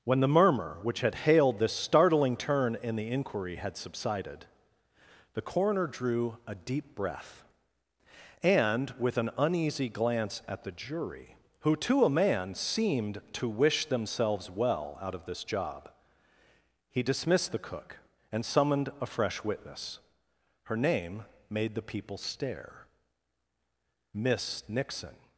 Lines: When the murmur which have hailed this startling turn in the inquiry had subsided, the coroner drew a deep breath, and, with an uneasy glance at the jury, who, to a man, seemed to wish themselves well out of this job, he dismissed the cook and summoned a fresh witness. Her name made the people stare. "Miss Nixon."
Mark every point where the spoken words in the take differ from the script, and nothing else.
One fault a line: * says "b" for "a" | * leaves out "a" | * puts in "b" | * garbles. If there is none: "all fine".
* says "had" for "have"